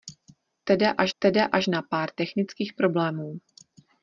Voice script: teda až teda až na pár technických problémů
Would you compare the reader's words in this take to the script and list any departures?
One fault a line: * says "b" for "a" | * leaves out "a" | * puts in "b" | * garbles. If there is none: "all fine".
all fine